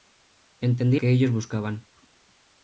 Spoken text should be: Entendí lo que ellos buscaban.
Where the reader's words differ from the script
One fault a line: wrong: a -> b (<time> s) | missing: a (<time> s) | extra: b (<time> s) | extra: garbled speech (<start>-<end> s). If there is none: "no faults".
missing: lo (1.0 s)